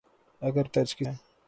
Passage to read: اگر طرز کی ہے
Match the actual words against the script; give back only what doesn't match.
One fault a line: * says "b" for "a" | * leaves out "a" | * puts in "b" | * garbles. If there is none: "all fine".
all fine